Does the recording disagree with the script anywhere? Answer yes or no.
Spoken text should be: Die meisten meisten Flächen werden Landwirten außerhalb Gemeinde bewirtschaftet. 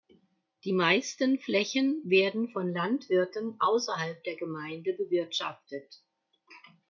yes